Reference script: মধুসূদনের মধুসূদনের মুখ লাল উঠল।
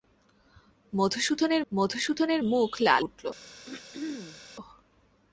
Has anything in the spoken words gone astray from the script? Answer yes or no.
no